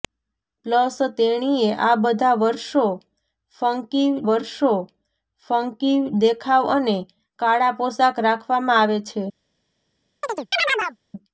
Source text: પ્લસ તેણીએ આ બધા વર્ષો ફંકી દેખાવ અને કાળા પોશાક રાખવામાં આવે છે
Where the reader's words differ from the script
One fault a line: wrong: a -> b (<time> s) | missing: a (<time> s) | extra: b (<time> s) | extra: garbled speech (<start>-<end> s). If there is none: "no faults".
extra: વર્ષો ફંકી (4.3 s)